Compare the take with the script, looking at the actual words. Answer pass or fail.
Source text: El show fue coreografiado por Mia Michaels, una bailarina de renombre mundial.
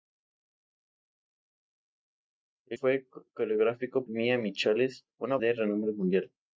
fail